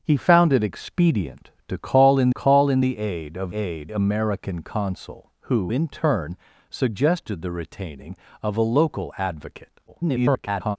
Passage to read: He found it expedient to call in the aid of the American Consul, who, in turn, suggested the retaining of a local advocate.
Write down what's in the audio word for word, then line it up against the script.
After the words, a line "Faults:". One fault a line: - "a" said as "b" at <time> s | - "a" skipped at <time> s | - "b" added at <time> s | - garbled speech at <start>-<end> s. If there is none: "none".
He found it expedient to call in call in the aid of aid American Consul, who, in turn, suggested the retaining of a local advocate. [garbled]
Faults:
- "call in" added at 2.3 s
- "the" said as "aid" at 3.5 s
- garbled speech at 9.9-10.8 s